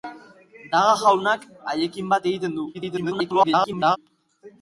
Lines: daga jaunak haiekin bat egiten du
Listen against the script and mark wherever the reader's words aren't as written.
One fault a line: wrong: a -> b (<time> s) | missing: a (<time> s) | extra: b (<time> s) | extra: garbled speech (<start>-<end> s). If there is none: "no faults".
extra: garbled speech (2.7-4.0 s)